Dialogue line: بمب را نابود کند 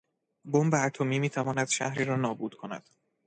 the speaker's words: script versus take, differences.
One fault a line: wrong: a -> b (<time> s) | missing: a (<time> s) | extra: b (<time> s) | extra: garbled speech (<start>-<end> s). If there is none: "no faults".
extra: اتمی میتواند شهری (0.8 s)